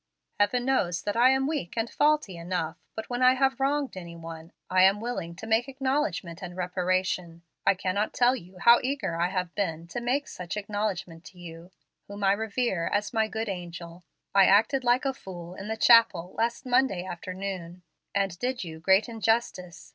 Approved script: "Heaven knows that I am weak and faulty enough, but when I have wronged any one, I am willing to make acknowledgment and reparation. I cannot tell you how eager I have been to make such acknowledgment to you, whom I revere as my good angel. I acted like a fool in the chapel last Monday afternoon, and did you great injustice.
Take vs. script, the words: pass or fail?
pass